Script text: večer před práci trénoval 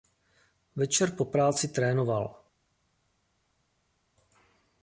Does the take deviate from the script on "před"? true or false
true